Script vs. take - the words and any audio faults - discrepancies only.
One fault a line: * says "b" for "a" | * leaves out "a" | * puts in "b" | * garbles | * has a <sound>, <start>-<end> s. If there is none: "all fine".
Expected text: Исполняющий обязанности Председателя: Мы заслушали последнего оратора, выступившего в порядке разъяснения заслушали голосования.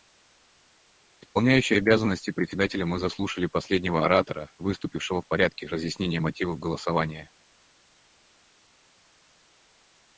* says "мотивов" for "заслушали"